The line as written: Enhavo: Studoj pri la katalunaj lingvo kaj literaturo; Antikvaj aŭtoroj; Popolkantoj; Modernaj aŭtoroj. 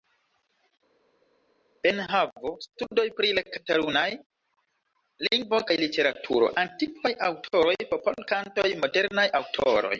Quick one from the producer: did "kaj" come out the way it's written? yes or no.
yes